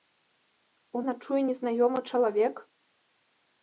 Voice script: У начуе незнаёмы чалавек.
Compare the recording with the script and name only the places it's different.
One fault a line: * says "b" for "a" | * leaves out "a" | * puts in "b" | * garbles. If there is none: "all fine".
all fine